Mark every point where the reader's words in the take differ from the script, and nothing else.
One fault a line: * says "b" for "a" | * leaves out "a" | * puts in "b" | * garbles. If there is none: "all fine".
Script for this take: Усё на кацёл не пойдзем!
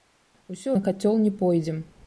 all fine